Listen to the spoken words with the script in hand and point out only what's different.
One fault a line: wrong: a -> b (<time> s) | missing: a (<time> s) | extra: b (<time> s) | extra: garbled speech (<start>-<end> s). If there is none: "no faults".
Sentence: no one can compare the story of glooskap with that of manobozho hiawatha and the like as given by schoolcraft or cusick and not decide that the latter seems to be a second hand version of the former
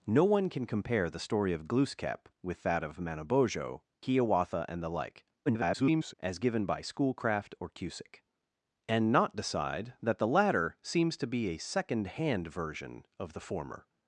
extra: garbled speech (5.5-6.1 s)